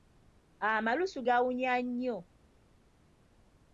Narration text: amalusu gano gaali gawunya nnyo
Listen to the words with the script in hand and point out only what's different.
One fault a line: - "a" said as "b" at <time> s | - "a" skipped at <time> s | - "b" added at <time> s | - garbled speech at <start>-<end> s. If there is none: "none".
- "gano gaali" skipped at 1.2 s